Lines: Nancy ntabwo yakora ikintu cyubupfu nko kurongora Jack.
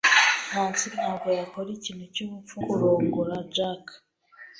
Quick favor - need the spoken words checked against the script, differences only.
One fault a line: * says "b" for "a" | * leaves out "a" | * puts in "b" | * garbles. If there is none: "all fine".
* leaves out "nko"